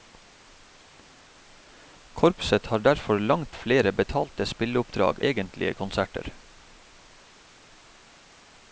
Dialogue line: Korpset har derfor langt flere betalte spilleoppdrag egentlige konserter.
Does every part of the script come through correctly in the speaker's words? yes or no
yes